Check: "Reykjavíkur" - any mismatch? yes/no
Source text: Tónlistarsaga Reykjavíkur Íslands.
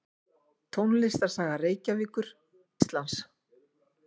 no